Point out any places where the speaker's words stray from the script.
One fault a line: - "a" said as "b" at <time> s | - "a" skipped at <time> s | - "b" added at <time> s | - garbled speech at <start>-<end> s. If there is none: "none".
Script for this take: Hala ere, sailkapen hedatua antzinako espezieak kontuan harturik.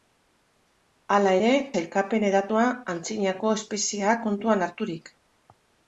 none